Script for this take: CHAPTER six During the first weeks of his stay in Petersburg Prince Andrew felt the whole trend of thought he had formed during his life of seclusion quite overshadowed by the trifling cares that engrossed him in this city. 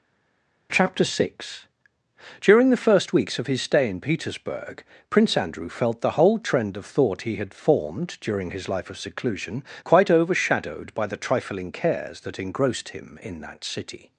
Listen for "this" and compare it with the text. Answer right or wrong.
wrong